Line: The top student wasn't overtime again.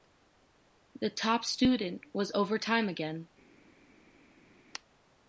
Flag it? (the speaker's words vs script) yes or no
yes